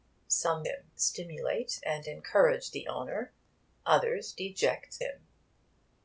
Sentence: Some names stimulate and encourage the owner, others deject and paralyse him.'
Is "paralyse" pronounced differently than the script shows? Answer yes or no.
yes